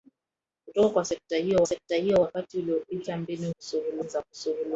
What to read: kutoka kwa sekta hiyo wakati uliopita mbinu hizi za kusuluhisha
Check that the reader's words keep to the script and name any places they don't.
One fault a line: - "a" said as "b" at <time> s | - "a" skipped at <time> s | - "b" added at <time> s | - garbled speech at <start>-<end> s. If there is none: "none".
- "sekta hiyo" added at 1.7 s
- "hizi" said as "kusuluhisha" at 3.5 s